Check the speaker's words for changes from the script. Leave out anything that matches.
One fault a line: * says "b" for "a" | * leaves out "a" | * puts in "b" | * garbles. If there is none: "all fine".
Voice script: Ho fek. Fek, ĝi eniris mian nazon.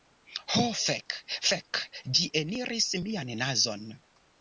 all fine